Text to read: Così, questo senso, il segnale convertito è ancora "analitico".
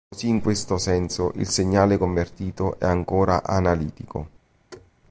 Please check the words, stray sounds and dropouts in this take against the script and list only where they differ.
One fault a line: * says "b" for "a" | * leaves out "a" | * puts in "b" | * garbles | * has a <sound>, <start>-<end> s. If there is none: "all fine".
* puts in "in"
* has a thud, 4.7-4.9 s